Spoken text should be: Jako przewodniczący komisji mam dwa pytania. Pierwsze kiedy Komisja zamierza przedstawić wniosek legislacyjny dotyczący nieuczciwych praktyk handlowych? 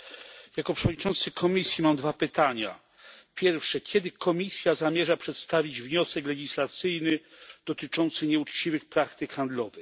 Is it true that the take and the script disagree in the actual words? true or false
false